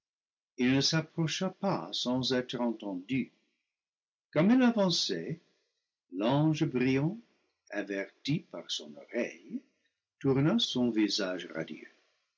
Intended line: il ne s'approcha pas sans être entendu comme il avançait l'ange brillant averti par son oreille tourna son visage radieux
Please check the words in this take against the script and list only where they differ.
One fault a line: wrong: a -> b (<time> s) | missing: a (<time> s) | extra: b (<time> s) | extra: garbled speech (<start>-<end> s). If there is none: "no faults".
no faults